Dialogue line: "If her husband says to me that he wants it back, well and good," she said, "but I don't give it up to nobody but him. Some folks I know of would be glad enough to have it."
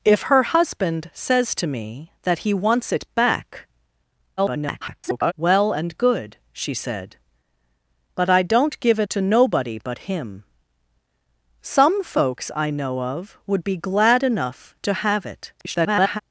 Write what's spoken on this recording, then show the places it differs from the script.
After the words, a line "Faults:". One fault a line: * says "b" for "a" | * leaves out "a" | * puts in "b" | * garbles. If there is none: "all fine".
"If her husband says to me that he wants it back, [garbled] well and good," she said, "but I don't give it to nobody but him. Some folks I know of would be glad enough to have it." [garbled]
Faults:
* garbles
* leaves out "up"
* garbles